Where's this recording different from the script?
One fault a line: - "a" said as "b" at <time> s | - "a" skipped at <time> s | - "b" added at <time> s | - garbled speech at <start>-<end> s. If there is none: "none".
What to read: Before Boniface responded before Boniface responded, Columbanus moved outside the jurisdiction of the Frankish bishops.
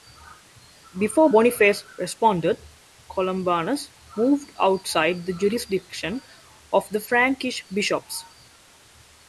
- "before Boniface responded" skipped at 2.6 s